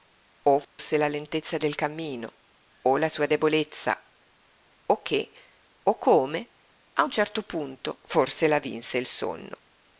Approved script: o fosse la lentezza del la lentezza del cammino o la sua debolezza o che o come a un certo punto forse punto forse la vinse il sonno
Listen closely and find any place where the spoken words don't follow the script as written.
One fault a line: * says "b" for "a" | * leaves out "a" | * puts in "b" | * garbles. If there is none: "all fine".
* leaves out "la lentezza del"
* leaves out "punto forse"